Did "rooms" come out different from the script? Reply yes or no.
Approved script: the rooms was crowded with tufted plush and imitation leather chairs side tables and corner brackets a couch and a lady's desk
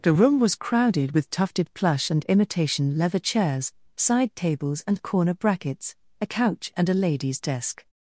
yes